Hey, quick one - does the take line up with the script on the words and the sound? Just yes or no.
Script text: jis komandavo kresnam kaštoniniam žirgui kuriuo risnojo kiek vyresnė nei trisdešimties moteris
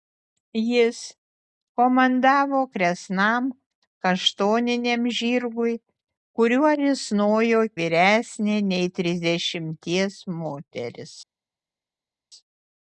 no